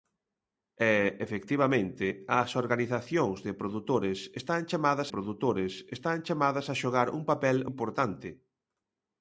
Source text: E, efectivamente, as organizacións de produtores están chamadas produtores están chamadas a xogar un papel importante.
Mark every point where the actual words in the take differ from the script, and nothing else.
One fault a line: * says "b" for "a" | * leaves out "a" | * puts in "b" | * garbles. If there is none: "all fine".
all fine